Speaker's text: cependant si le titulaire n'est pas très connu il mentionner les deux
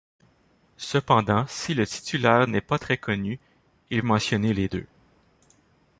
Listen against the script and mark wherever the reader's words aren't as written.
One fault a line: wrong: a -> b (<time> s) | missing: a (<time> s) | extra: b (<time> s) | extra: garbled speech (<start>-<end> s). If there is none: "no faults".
no faults